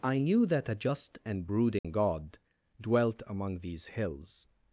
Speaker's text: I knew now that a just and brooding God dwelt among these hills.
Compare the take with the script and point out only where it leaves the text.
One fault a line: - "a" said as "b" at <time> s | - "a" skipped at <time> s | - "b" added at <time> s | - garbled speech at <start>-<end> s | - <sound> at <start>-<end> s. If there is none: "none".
- "now" skipped at 0.5 s
- dropout at 1.8-1.8 s